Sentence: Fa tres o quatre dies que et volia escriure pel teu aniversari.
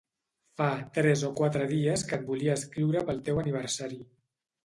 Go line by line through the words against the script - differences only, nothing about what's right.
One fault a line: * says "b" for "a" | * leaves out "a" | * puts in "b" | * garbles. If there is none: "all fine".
all fine